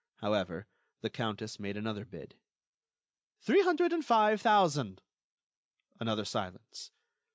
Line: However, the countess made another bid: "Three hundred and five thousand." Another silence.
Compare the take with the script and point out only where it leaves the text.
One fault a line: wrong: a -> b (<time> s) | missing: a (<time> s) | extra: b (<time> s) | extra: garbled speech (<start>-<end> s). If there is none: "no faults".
no faults